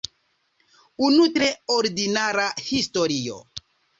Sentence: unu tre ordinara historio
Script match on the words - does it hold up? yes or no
yes